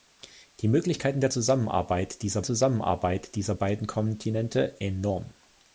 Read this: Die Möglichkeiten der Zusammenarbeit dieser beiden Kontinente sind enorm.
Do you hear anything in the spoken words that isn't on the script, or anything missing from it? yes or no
yes